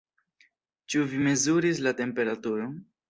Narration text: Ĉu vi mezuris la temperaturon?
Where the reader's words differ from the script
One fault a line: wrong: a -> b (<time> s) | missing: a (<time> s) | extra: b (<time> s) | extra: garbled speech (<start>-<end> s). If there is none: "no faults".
no faults